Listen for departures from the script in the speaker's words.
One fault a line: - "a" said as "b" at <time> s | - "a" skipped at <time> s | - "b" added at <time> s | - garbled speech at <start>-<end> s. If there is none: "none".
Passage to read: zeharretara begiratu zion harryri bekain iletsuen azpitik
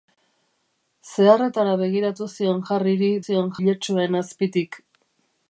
- "bekain" said as "zion" at 3.3 s